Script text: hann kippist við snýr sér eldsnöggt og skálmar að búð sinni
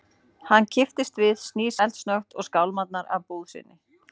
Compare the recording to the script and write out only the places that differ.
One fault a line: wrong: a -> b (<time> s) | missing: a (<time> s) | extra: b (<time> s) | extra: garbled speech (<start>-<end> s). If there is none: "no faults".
missing: sér (1.8 s)